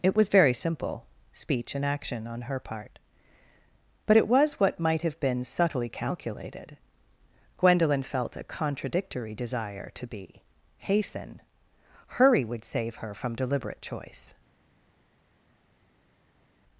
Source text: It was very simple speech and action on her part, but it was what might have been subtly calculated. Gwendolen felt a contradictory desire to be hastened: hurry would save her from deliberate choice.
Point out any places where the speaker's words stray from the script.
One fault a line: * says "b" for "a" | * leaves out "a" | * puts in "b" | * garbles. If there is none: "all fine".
* says "hasten" for "hastened"